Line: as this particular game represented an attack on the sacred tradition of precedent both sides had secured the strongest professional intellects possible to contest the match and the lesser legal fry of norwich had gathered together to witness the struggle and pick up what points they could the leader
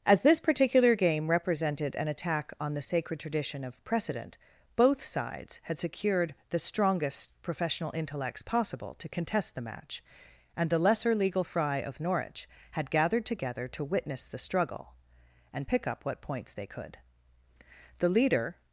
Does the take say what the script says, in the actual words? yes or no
yes